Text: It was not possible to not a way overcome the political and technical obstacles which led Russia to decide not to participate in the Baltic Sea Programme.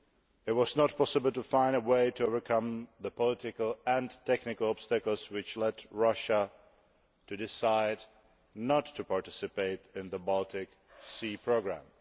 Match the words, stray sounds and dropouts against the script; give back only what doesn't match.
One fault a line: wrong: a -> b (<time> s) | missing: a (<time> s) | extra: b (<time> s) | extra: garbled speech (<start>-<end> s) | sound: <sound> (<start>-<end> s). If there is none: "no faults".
wrong: not -> find (1.4 s)
extra: to (2.1 s)